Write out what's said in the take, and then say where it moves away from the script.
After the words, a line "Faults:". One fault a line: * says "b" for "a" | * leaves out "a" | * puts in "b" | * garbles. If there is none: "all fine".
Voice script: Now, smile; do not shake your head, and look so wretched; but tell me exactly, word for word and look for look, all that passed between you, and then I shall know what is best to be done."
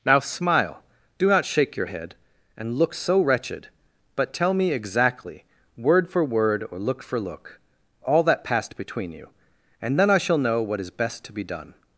Now, smile; do not shake your head, and look so wretched; but tell me exactly, word for word or look for look, all that passed between you, and then I shall know what is best to be done."
Faults:
* says "or" for "and"